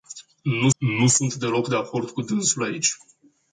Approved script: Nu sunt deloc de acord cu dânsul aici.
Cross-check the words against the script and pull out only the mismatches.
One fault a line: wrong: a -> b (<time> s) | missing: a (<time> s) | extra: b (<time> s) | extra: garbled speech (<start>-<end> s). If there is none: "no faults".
extra: nu (0.8 s)